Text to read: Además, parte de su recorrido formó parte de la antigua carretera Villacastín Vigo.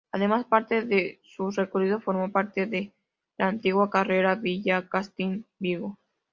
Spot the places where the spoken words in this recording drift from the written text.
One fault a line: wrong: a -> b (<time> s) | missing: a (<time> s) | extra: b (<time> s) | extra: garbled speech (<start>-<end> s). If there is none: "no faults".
no faults